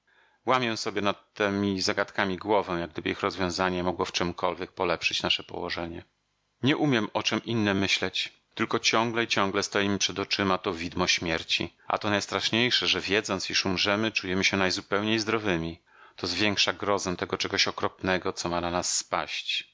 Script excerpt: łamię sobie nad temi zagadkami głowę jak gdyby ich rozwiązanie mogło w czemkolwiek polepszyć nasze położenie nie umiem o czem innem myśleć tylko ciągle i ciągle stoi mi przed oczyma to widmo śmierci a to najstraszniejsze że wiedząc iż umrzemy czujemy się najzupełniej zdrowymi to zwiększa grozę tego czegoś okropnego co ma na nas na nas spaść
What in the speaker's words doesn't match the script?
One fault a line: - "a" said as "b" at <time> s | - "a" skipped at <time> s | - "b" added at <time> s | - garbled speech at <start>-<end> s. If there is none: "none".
- "na nas" skipped at 19.0 s